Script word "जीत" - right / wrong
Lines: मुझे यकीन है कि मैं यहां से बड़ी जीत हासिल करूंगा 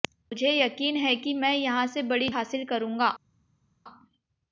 wrong